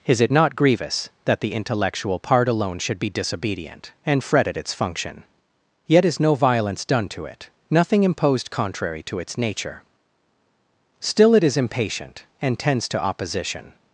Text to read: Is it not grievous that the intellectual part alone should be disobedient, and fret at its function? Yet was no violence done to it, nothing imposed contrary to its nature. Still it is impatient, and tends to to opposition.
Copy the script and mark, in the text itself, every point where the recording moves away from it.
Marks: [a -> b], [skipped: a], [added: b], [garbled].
Is it not grievous that the intellectual part alone should be disobedient, and fret at its function? Yet [was -> is] no violence done to it, nothing imposed contrary to its nature. Still it is impatient, and tends to [skipped: to] opposition.